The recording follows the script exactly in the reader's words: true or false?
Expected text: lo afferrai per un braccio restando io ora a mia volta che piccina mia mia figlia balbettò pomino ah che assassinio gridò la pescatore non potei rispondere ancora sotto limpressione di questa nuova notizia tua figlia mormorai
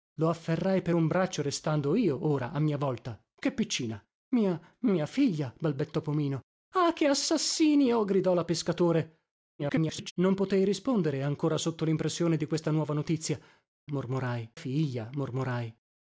false